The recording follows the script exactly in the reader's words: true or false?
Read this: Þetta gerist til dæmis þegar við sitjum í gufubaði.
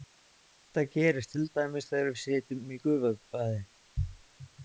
true